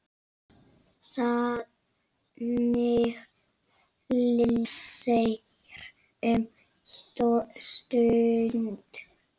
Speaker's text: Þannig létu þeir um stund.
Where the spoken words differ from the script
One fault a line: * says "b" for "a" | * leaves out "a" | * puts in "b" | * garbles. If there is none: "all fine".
* leaves out "létu"